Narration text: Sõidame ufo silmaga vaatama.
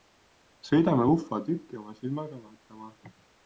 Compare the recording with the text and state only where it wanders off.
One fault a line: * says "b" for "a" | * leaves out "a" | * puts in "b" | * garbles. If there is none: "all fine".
* puts in "tükki oma"